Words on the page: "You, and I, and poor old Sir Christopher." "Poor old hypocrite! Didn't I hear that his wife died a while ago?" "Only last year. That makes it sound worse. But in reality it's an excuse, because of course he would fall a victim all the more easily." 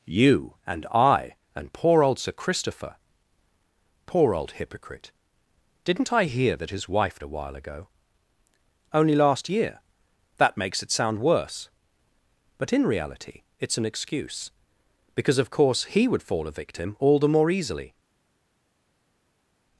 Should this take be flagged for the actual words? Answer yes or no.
yes